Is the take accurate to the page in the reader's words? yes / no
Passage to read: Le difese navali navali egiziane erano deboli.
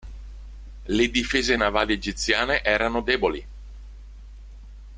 no